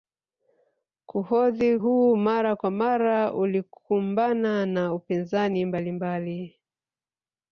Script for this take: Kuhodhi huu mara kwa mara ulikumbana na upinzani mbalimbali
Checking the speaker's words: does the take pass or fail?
pass